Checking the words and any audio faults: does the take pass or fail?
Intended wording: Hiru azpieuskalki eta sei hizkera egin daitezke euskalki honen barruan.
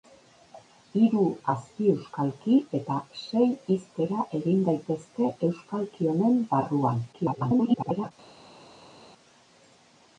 fail